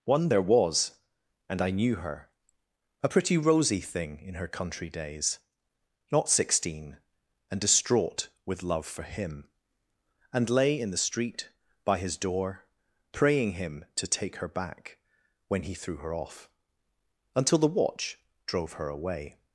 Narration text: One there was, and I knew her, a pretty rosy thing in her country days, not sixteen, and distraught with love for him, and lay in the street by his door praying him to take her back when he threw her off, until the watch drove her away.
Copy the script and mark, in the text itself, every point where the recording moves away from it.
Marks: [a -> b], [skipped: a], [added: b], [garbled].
One there was, and I knew her, a pretty rosy thing in her country days, not sixteen, and distraught with love for him, and lay in the street by his door praying him to take her back when he threw her off, until the watch drove her away.